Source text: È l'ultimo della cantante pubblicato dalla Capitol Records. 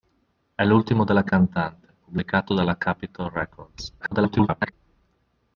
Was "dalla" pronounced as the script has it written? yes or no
yes